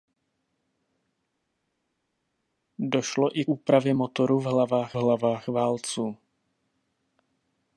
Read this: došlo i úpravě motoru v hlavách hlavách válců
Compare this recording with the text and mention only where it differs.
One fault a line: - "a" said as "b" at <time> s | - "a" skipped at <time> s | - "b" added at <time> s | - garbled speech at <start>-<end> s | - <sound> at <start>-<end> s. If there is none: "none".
none